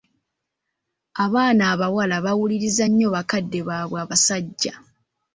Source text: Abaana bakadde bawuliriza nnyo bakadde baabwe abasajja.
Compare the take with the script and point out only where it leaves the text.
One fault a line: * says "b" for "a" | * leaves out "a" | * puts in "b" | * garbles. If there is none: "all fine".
* says "abawala" for "bakadde"